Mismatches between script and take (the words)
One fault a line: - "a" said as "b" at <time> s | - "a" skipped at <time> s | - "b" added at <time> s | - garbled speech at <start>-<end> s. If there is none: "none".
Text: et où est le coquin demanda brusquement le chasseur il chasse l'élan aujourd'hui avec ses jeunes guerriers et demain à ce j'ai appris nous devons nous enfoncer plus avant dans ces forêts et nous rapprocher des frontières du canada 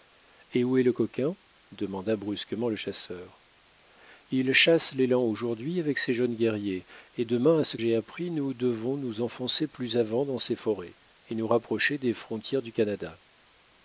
none